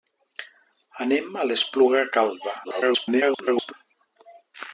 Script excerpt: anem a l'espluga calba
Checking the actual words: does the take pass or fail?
fail